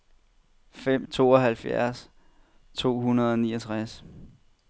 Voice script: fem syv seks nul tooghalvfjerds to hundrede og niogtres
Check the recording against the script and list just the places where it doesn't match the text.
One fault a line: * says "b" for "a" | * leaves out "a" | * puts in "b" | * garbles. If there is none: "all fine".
* leaves out "syv seks nul"